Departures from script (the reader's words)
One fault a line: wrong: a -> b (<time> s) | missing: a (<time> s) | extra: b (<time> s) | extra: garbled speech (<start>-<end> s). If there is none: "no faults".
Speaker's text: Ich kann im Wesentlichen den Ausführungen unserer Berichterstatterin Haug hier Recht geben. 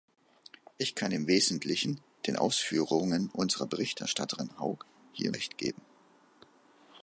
no faults